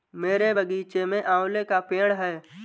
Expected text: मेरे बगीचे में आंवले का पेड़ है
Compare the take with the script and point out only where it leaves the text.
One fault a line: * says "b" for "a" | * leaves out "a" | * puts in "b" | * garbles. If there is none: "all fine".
all fine